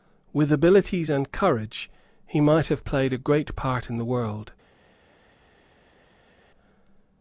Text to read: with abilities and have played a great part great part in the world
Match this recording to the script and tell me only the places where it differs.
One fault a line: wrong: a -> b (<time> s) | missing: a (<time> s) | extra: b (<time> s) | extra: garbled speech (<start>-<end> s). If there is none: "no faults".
extra: courage he might (1.3 s)
missing: great part (3.9 s)